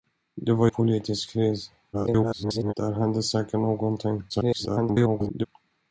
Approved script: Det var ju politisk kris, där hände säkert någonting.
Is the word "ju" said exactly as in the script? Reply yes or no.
no